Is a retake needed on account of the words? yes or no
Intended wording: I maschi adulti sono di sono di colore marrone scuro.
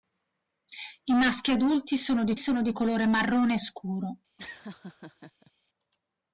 no